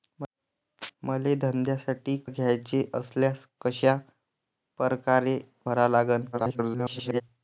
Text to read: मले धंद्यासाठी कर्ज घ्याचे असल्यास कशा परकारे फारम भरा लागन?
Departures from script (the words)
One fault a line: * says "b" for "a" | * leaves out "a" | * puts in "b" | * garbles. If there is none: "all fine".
* leaves out "कर्ज"
* leaves out "फारम"
* garbles